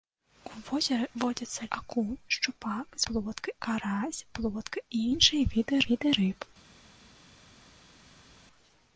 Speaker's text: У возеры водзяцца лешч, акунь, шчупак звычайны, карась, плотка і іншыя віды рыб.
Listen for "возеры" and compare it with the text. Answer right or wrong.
right